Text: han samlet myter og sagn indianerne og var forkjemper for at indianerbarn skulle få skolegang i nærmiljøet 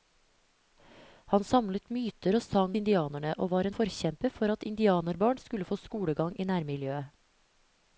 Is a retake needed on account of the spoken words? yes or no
no